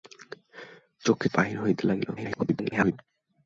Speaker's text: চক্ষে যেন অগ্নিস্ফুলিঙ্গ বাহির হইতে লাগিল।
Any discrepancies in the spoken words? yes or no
yes